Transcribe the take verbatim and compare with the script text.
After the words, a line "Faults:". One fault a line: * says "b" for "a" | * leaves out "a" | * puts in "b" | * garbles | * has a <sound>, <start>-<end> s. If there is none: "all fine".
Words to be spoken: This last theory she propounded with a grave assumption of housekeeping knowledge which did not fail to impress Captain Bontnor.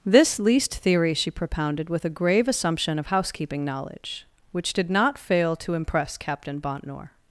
This least theory she propounded with a grave assumption of housekeeping knowledge which did not fail to impress Captain Bontnor.
Faults:
* says "least" for "last"